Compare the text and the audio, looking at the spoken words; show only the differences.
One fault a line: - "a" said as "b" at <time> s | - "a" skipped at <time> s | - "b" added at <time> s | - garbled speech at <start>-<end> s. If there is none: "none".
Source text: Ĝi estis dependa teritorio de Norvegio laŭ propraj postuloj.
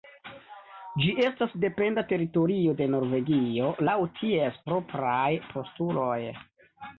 - "estis" said as "estas" at 1.2 s
- "ties" added at 4.2 s